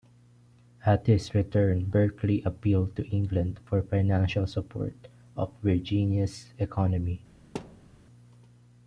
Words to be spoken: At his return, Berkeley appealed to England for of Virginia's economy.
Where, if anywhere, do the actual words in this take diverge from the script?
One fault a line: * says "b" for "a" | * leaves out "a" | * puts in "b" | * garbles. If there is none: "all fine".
* puts in "financial support"